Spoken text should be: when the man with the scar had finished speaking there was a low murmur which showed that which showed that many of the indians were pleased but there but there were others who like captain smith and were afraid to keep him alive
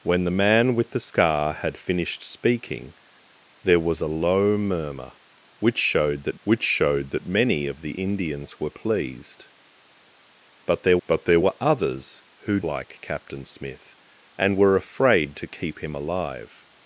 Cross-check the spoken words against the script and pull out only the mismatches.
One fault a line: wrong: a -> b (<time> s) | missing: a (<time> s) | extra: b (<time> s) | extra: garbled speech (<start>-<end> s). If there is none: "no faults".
no faults